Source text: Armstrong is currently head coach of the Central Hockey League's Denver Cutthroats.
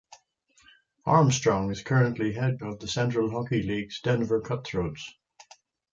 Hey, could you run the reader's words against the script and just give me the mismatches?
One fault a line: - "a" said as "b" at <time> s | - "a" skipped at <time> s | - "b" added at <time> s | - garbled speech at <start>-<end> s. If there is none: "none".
- "coach" skipped at 2.6 s